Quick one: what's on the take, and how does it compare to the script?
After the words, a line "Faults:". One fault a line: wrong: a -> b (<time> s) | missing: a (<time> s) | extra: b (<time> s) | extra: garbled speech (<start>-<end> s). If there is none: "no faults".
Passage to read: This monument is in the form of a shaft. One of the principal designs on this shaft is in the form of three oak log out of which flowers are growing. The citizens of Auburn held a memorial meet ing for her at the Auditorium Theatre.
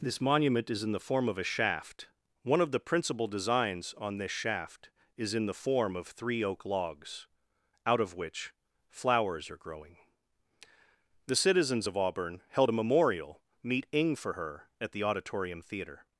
This monument is in the form of a shaft. One of the principal designs on this shaft is in the form of three oak logs out of which flowers are growing. The citizens of Auburn held a memorial meet ing for her at the Auditorium Theatre.
Faults:
wrong: log -> logs (6.7 s)